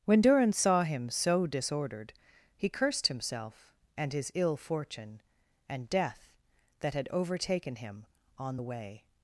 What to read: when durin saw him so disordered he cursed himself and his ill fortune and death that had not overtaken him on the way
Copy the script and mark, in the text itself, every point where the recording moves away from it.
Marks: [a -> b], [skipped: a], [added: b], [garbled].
when durin saw him so disordered he cursed himself and his ill fortune and death that had [skipped: not] overtaken him on the way